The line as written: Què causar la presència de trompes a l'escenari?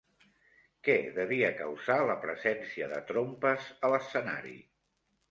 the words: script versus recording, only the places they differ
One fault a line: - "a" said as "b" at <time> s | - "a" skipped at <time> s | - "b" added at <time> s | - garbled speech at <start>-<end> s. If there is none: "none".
- "devia" added at 1.2 s